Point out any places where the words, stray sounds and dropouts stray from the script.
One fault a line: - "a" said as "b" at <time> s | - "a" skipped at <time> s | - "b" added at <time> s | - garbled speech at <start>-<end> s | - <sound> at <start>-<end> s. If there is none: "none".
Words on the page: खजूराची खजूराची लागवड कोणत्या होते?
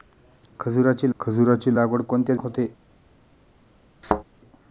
- thud at 4.0-4.2 s